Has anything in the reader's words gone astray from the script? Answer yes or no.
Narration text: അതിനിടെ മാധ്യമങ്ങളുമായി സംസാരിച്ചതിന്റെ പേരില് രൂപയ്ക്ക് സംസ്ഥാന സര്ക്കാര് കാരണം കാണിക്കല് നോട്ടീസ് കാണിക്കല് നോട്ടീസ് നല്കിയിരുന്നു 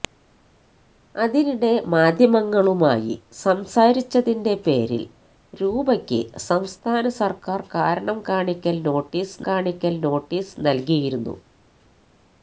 no